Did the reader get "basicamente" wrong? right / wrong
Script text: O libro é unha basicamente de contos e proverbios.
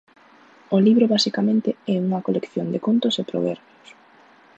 wrong